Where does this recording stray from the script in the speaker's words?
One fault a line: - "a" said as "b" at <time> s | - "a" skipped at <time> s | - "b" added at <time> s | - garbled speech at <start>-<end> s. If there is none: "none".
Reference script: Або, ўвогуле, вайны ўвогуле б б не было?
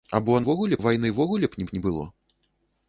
none